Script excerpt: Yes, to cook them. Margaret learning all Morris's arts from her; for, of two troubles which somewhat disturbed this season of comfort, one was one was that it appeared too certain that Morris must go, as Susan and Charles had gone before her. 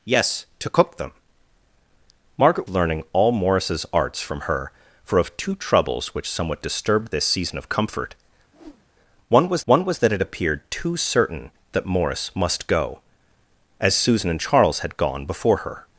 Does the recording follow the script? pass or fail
pass